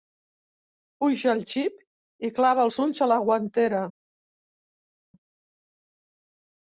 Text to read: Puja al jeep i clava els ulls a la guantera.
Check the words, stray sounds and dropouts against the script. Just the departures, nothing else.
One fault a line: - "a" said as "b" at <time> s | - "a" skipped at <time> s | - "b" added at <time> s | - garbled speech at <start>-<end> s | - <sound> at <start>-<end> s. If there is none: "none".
none